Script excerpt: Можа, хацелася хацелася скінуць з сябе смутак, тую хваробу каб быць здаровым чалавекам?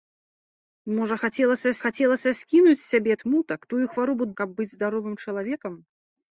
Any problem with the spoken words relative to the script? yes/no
no